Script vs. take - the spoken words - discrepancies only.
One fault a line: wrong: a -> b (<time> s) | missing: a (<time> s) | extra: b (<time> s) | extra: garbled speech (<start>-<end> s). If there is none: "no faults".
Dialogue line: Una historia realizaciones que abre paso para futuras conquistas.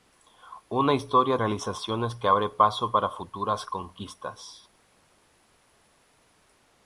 no faults